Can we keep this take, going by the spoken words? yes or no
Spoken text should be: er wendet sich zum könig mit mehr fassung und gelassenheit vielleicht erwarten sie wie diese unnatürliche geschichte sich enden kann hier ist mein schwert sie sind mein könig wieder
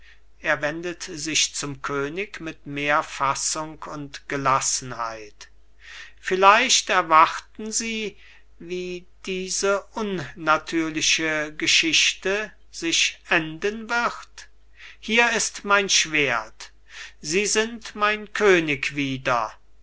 no